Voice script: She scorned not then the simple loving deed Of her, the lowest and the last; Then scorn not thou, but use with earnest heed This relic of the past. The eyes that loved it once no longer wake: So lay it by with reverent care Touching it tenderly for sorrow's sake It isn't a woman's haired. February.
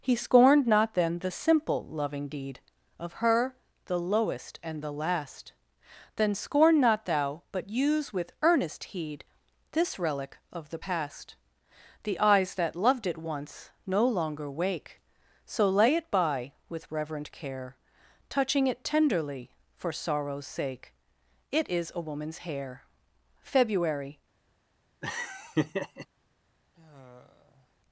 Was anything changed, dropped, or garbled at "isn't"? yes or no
yes